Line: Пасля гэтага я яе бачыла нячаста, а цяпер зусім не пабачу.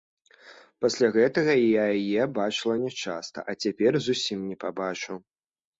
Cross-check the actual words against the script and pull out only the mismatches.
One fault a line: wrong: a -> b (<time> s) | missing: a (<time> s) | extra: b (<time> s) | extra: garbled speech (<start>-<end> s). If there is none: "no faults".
no faults